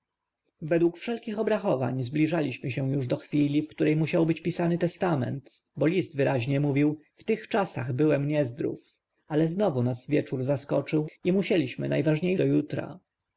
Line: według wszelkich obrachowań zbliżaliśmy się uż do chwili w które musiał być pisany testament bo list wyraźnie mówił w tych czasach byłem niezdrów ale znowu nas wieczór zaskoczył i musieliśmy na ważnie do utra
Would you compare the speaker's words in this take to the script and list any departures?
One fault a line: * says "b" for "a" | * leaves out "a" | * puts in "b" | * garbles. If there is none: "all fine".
all fine